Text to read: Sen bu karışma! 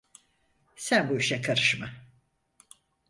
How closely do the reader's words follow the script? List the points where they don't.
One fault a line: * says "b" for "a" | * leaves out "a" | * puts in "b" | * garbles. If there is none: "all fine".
* puts in "işe"